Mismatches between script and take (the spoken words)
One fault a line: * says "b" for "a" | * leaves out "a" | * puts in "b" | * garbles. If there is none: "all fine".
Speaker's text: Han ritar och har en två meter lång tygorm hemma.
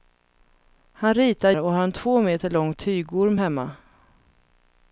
all fine